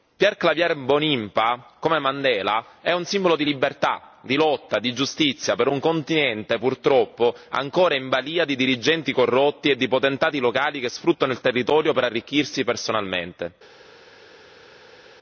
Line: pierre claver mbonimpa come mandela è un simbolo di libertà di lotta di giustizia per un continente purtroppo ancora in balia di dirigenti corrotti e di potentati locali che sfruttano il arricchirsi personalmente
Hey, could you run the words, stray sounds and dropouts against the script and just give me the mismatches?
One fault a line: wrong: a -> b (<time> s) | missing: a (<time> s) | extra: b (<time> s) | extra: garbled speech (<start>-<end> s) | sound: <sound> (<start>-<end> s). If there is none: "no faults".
extra: territorio per (11.4 s)